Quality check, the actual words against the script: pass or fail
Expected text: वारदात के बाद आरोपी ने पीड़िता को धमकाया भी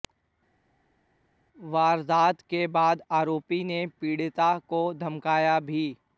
pass